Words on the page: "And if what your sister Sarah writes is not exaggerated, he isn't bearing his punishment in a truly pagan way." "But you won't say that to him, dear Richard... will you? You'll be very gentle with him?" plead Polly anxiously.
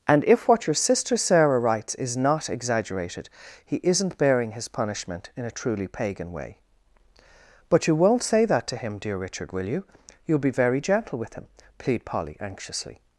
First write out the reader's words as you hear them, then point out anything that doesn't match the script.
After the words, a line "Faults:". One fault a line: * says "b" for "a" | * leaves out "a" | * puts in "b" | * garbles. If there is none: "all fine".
"And if what your sister Sarah writes is not exaggerated, he isn't bearing his punishment in a truly pagan way." "But you won't say that to him, dear Richard... will you? You'll be very gentle with him?" plead Polly anxiously.
Faults:
all fine